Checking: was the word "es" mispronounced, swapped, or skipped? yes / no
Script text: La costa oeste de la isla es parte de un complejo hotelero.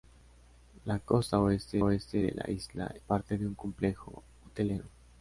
yes